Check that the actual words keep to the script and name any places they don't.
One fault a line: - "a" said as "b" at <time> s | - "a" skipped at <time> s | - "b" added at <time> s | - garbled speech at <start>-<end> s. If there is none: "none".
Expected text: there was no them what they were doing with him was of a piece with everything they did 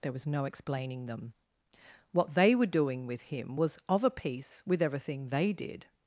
- "explaining" added at 0.4 s